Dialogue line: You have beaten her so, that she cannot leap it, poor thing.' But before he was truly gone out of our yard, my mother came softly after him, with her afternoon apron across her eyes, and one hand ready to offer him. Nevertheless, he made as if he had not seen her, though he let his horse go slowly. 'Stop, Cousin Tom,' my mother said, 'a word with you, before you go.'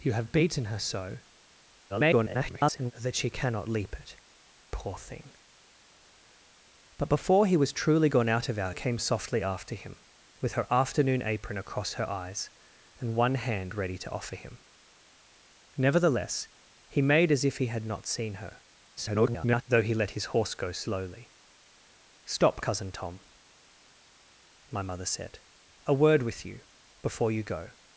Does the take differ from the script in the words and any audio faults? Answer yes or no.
yes